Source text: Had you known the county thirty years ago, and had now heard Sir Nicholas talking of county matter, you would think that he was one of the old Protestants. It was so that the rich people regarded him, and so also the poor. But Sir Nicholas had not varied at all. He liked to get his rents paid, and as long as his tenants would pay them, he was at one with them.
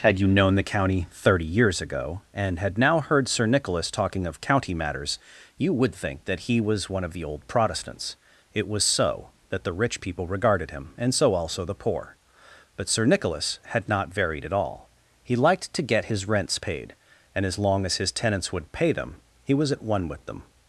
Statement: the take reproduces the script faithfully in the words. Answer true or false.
false